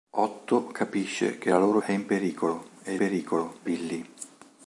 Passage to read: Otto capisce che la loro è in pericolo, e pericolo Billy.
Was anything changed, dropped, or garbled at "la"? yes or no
no